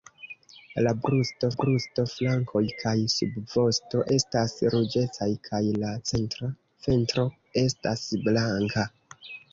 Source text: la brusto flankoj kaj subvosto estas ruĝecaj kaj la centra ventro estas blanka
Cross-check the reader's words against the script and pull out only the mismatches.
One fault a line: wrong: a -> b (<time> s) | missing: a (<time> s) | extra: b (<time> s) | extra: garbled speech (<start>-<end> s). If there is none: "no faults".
extra: brusto (1.6 s)